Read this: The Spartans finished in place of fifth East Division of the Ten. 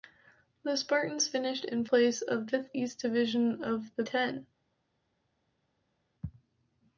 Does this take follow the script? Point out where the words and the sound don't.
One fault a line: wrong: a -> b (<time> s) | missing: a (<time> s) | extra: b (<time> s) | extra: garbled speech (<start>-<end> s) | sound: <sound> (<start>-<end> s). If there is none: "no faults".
no faults